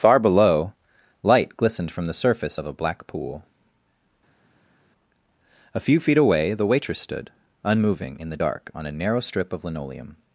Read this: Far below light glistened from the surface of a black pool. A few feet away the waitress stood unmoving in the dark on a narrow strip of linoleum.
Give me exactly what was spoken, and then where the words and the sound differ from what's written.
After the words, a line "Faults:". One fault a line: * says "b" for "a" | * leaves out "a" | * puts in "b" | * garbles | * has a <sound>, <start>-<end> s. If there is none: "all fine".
Far below light glistened from the surface of a black pool. A few feet away the waitress stood unmoving in the dark on a narrow strip of linoleum.
Faults:
all fine